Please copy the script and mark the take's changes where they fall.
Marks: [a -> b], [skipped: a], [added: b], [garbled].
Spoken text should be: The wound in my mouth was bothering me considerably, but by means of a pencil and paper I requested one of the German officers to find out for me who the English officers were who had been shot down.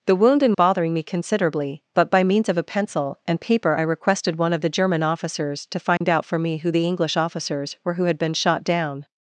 The wound in [skipped: my mouth was] bothering me considerably, but by means of a pencil and paper I requested one of the German officers to find out for me who the English officers were who had been shot down.